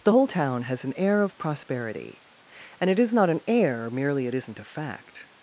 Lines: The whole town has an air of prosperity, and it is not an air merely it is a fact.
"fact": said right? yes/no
yes